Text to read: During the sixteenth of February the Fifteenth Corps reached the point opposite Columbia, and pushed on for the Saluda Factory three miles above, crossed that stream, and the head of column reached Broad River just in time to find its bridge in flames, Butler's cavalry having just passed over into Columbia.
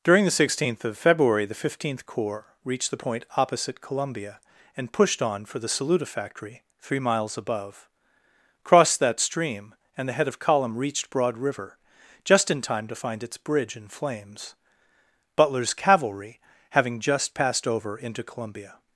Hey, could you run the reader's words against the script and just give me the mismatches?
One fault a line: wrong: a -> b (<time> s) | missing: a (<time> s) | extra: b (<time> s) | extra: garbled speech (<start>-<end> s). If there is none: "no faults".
no faults